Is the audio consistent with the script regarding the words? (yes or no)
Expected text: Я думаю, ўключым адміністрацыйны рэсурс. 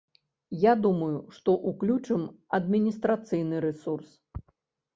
no